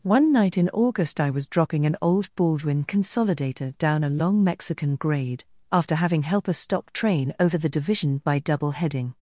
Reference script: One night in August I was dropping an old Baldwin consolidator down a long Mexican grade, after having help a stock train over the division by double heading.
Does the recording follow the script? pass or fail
pass